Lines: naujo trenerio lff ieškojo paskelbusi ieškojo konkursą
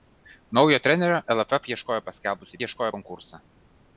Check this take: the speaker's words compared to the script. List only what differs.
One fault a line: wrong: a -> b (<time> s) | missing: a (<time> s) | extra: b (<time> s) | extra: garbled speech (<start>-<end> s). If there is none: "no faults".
no faults